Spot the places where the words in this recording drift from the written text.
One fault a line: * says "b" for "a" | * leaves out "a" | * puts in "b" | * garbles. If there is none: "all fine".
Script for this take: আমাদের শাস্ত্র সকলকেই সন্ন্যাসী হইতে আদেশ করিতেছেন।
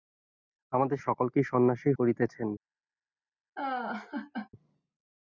* leaves out "শাস্ত্র"
* leaves out "হইতে আদেশ"